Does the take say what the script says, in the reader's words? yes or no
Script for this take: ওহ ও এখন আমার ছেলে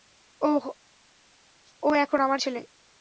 yes